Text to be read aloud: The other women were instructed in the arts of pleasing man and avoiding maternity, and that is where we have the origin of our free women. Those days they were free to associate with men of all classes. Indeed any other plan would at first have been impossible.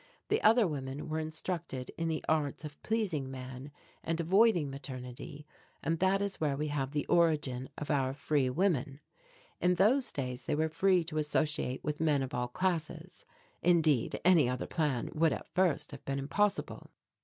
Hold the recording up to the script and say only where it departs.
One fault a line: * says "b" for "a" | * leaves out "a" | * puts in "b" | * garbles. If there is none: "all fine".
* puts in "In"